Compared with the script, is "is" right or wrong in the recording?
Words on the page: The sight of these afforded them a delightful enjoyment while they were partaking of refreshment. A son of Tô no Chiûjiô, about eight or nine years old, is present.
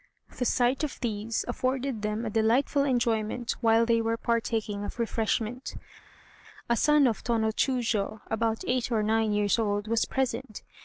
wrong